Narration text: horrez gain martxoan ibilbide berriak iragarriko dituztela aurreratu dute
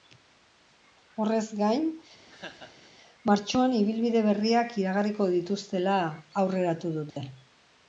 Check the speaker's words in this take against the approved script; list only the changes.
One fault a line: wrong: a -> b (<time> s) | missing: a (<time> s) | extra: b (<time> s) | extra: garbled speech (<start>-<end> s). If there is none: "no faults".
no faults